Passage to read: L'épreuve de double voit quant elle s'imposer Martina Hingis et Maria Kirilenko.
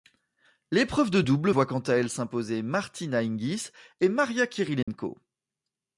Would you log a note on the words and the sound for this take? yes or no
yes